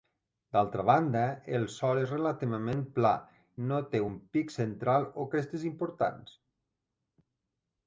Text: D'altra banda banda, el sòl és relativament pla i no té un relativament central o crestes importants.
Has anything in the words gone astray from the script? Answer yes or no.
yes